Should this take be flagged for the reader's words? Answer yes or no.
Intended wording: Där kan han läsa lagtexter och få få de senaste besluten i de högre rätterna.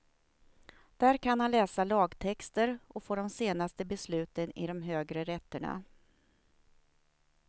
yes